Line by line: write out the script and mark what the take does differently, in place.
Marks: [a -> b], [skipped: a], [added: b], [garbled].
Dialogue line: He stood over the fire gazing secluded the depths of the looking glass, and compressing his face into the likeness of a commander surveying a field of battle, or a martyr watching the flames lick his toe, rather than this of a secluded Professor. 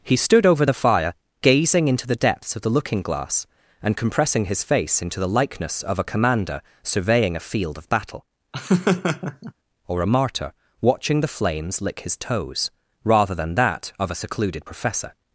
He stood over the fire gazing [secluded -> into] the depths of the looking glass, and compressing his face into the likeness of a commander surveying a field of battle, or a martyr watching the flames lick his [toe, -> toes] rather than [this -> that] of a secluded Professor.